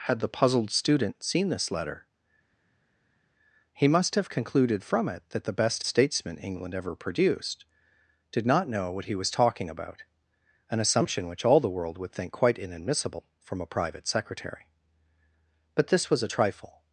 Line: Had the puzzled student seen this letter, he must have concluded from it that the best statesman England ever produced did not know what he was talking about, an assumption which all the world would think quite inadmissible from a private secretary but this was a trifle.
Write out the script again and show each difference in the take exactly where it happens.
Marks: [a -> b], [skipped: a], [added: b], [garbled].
Had the puzzled student seen this letter, he must have concluded from it that the best statesman England ever produced did not know what he was talking about, an assumption which all the world would think quite inadmissible from a private secretary but this was a trifle.